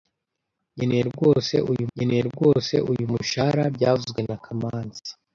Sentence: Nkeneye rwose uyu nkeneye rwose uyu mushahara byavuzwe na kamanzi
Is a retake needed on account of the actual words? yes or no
no